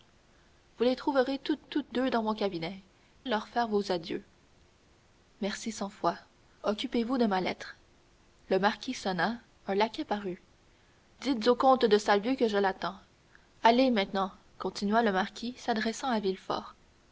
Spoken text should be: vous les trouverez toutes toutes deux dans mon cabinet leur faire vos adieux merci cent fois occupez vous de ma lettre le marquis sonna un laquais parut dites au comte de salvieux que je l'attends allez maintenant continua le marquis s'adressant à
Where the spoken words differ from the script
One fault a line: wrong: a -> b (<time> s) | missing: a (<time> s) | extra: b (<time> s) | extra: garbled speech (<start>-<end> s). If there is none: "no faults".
no faults